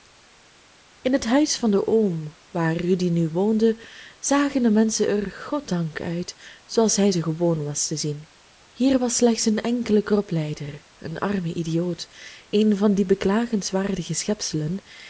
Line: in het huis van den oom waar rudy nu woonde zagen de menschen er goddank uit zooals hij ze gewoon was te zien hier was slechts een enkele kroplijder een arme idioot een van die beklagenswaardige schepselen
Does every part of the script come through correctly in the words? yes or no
yes